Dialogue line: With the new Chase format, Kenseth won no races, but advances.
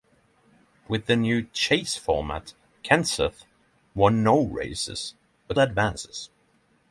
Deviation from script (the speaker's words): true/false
false